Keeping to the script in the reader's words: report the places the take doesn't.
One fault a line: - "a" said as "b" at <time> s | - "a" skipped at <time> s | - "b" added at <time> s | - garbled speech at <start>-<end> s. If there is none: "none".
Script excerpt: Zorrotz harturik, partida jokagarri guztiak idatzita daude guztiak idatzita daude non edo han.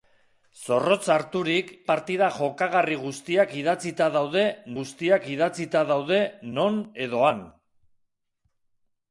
none